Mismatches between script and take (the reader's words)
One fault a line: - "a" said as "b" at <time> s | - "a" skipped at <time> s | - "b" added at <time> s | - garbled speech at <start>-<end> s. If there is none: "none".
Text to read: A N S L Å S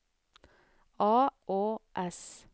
- "N S L" skipped at 1.3 s